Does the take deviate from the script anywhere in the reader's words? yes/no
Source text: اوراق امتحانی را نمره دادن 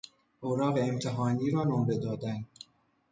no